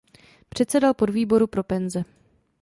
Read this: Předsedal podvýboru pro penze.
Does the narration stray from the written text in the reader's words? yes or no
no